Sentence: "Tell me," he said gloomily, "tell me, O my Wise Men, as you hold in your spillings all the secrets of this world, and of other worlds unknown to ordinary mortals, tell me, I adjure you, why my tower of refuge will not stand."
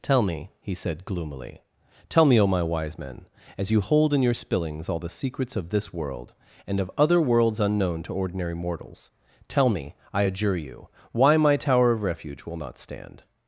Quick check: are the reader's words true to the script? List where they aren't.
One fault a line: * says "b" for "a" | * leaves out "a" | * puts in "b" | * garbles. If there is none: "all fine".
all fine